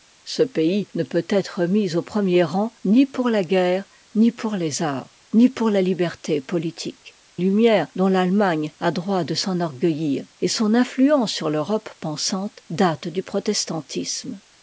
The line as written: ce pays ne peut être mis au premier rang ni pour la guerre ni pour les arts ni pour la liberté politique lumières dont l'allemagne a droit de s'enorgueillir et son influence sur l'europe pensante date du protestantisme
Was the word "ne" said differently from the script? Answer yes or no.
no